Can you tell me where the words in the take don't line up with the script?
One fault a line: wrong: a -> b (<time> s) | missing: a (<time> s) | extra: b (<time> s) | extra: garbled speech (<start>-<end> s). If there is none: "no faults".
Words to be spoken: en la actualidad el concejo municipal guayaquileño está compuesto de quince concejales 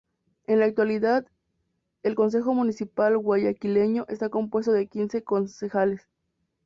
no faults